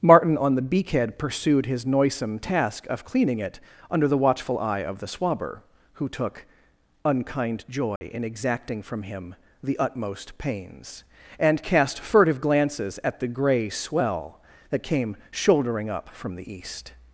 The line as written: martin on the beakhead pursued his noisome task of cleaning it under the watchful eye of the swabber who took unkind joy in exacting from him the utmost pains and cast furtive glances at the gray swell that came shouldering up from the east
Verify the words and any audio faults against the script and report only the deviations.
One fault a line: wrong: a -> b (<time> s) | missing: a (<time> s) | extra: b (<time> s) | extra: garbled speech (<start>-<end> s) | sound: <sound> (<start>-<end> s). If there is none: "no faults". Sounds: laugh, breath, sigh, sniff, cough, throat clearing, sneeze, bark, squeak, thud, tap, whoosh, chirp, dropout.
sound: dropout (8.0-8.0 s)